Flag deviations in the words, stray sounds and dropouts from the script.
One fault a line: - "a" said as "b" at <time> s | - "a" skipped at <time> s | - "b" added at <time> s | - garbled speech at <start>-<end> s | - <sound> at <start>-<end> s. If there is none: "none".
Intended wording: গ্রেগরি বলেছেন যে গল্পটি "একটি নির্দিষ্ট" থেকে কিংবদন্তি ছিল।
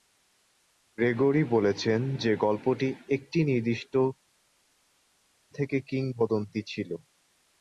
none